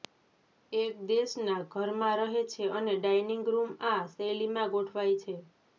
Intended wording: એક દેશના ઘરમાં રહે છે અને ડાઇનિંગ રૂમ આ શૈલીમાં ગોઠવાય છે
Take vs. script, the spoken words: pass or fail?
pass